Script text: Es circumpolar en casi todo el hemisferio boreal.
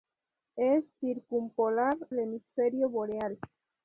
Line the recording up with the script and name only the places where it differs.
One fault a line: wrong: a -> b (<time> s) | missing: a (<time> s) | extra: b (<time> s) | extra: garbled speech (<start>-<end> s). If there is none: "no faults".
missing: en casi todo (1.9 s)